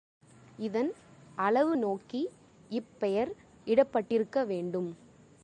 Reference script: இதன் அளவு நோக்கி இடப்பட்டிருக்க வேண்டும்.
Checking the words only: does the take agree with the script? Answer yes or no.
no